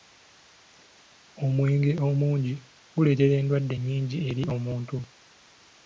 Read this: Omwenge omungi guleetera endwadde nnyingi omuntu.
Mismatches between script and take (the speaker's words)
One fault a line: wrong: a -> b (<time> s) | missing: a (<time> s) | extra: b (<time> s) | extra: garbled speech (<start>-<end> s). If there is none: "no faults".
extra: eri (4.3 s)